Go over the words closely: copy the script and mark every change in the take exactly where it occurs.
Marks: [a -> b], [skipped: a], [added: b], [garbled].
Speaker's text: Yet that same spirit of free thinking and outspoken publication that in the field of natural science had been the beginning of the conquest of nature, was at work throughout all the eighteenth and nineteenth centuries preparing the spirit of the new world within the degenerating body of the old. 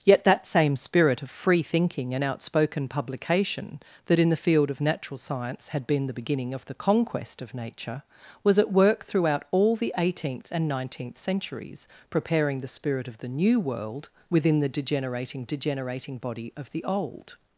Yet that same spirit of free thinking and outspoken publication that in the field of natural science had been the beginning of the conquest of nature, was at work throughout all the eighteenth and nineteenth centuries preparing the spirit of the new world within the degenerating [added: degenerating] body of the old.